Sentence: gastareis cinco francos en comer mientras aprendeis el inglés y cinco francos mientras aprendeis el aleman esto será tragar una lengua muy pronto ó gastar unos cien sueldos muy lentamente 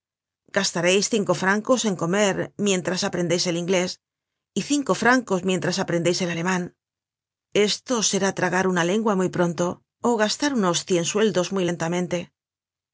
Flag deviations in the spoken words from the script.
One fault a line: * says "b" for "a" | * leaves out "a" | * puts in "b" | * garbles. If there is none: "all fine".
all fine